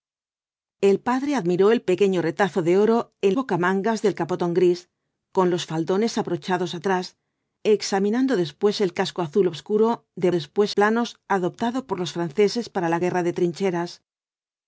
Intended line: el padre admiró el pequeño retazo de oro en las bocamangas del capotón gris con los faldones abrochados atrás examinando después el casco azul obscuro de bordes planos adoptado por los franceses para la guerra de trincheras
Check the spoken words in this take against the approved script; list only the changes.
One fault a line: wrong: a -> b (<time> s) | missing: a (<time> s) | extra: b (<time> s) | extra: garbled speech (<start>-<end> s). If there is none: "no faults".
missing: las (3.4 s)
wrong: bordes -> después (10.3 s)